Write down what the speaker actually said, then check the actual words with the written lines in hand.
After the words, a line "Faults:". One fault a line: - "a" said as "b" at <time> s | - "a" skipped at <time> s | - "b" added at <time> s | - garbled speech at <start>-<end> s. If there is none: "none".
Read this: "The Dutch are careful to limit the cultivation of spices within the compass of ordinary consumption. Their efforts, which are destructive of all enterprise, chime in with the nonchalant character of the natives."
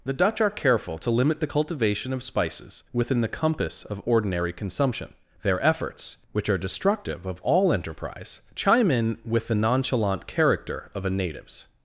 "The Dutch are careful to limit the cultivation of spices within the compass of ordinary consumption. Their efforts, which are destructive of all enterprise, chime in with the nonchalant character of a natives."
Faults:
- "the" said as "a" at 11.1 s